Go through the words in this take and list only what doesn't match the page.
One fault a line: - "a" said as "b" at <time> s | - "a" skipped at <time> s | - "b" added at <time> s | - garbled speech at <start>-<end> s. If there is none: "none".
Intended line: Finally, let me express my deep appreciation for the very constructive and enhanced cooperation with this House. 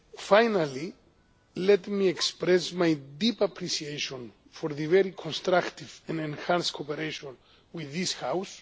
none